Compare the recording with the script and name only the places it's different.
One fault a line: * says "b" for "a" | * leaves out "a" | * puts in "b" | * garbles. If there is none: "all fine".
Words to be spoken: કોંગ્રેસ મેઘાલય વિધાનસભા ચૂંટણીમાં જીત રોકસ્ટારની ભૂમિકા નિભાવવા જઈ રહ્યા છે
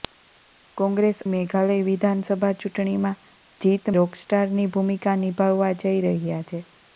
all fine